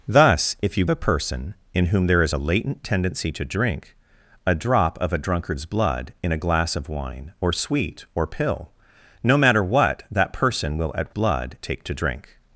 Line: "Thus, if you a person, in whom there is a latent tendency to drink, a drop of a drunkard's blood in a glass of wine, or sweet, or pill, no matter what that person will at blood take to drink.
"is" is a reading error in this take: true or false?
false